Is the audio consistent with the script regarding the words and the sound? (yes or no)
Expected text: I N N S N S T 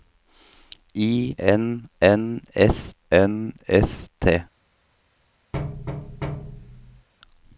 no